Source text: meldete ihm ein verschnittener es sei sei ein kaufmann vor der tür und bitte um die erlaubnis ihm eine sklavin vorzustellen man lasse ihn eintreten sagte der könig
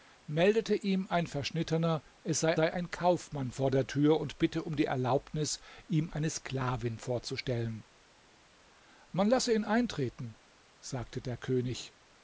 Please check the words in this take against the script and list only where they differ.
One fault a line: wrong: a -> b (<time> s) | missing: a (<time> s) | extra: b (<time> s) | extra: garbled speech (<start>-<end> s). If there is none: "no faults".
no faults